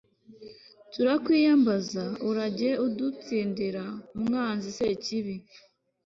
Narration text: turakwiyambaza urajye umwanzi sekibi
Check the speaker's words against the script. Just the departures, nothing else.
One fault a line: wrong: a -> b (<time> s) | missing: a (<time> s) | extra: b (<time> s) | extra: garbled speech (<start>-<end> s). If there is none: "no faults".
extra: udutsindira (2.9 s)